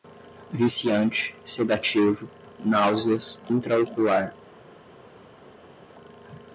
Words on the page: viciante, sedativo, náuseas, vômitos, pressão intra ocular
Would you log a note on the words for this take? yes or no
yes